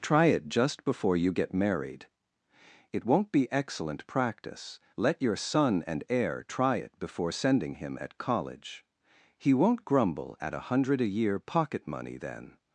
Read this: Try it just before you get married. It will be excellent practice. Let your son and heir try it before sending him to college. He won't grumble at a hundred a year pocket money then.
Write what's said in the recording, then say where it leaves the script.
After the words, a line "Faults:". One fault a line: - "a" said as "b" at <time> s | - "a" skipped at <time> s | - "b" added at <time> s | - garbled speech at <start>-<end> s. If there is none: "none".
Try it just before you get married. It won't be excellent practice. Let your son and heir try it before sending him at college. He won't grumble at a hundred a year pocket money then.
Faults:
- "will" said as "won't" at 3.0 s
- "to" said as "at" at 8.0 s